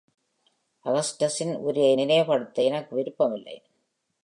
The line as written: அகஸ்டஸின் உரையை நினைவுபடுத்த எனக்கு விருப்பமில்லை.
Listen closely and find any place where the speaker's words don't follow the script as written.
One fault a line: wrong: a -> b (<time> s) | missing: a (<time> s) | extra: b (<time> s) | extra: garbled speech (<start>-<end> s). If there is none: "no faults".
no faults